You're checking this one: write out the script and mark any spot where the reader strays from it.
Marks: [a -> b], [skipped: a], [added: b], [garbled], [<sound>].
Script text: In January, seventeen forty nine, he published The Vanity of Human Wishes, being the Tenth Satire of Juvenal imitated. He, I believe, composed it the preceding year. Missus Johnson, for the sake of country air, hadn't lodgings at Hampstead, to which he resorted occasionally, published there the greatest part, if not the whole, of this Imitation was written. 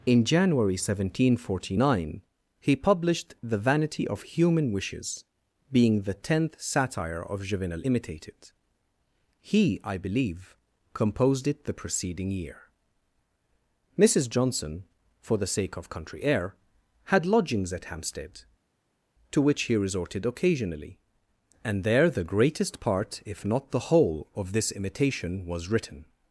In January, seventeen forty nine, he published The Vanity of Human Wishes, being the Tenth Satire of Juvenal imitated. He, I believe, composed it the preceding year. Missus Johnson, for the sake of country air, [hadn't -> had] lodgings at Hampstead, to which he resorted occasionally, [published -> and] there the greatest part, if not the whole, of this Imitation was written.